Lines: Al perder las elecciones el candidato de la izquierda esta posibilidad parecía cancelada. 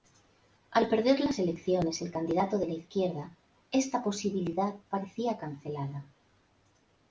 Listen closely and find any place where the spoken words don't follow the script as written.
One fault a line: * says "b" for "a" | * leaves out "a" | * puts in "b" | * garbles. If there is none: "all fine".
all fine